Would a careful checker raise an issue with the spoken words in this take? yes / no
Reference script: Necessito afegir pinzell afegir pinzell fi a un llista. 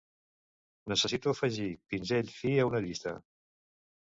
yes